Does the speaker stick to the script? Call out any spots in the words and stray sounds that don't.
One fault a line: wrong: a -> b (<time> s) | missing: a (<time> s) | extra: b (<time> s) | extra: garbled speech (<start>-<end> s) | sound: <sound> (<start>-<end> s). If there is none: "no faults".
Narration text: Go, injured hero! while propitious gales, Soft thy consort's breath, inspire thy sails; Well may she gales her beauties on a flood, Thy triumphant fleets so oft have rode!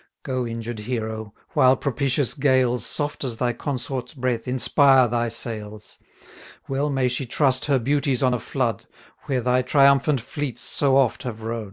extra: as (3.2 s)
wrong: gales -> trust (7.3 s)
extra: Where (9.2 s)